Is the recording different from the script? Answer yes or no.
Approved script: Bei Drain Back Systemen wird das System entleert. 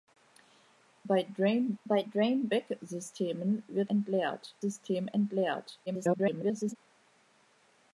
yes